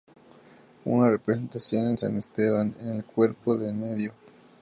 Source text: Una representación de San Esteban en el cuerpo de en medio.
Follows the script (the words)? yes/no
yes